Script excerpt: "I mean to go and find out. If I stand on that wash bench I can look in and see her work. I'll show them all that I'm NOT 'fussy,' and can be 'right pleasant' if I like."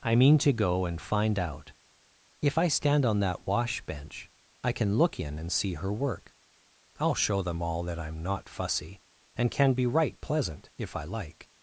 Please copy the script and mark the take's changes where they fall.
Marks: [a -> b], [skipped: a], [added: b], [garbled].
"I mean to go and find out. If I stand on that wash bench I can look in and see her work. I'll show them all that I'm NOT 'fussy,' and can be 'right pleasant' if I like."